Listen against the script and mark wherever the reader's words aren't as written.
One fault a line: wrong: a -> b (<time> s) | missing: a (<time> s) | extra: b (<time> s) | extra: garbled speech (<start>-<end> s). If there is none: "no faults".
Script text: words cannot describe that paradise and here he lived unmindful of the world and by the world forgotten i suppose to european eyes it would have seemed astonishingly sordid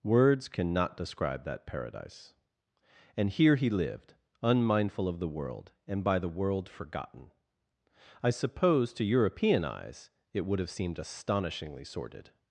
no faults